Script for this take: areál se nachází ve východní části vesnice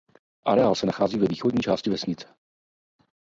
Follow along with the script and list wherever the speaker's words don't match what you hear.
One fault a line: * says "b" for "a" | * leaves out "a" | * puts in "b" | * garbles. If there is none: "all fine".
all fine